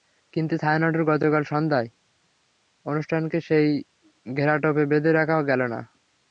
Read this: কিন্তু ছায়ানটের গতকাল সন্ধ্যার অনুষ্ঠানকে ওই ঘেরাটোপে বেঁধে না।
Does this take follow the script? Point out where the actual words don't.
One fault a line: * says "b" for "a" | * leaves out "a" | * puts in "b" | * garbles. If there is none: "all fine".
* says "সেই" for "ওই"
* puts in "রাখা গেল"